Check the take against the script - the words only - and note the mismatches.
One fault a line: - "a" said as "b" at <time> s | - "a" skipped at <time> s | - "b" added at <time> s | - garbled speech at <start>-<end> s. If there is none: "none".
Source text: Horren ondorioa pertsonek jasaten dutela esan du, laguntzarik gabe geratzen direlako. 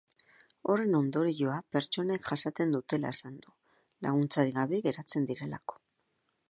none